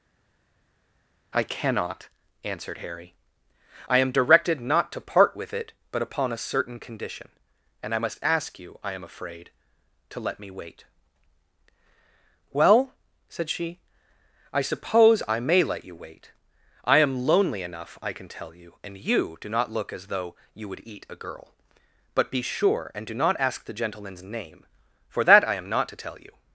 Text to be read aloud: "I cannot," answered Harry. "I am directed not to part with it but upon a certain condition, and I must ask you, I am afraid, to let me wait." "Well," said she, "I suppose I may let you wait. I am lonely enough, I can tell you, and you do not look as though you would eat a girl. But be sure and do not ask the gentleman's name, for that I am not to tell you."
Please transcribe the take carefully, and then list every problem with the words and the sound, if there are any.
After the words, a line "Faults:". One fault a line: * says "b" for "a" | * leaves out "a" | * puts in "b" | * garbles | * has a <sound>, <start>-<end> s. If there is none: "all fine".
"I cannot," answered Harry. "I am directed not to part with it but upon a certain condition, and I must ask you, I am afraid, to let me wait." "Well," said she, "I suppose I may let you wait. I am lonely enough, I can tell you, and you do not look as though you would eat a girl. But be sure and do not ask the gentleman's name, for that I am not to tell you."
Faults:
all fine